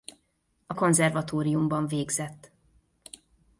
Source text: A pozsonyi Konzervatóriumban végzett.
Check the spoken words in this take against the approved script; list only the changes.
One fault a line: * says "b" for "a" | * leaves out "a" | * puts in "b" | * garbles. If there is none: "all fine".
* leaves out "pozsonyi"